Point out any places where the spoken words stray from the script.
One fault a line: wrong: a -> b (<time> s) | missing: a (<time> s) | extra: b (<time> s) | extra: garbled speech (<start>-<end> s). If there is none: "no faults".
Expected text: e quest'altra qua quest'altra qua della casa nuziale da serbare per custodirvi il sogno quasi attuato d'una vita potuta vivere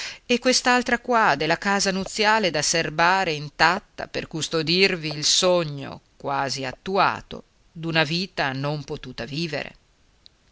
missing: quest'altra qua (1.4 s)
extra: intatta (3.3 s)
extra: non (8.5 s)